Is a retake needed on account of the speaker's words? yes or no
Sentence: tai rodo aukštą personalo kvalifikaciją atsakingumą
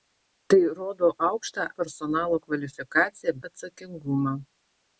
no